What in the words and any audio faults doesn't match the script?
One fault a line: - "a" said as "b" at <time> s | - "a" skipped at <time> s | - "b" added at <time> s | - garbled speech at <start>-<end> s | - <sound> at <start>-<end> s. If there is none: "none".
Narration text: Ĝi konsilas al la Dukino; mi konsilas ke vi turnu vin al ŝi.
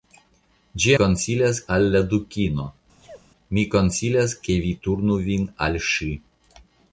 - sneeze at 3.0-3.3 s